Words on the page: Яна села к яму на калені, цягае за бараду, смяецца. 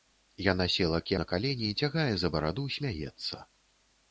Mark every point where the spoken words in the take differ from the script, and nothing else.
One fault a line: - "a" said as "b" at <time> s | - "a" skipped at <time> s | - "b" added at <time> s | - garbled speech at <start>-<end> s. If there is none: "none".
- "яму" skipped at 1.1 s